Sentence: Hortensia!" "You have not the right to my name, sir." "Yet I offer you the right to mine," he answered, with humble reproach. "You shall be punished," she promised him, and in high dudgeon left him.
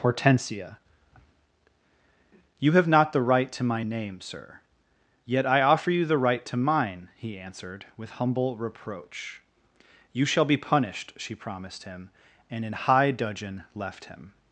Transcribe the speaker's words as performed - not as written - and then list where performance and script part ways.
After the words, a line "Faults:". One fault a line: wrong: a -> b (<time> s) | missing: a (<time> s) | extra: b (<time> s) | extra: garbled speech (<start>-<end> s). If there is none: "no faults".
Hortensia!" "You have not the right to my name, sir." "Yet I offer you the right to mine," he answered, with humble reproach. "You shall be punished," she promised him, and in high dudgeon left him.
Faults:
no faults